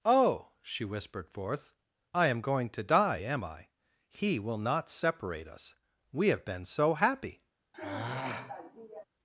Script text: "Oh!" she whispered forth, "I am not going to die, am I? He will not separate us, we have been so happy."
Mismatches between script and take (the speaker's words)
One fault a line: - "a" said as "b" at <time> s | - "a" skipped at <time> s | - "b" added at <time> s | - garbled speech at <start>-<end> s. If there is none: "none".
- "not" skipped at 2.4 s